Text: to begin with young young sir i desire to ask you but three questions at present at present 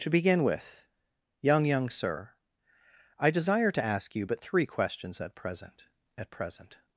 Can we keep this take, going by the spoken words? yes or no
yes